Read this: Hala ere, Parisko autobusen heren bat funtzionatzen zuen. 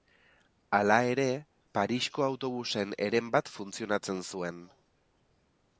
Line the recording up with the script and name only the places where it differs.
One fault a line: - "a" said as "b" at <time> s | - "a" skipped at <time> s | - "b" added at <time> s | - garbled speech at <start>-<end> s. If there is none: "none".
none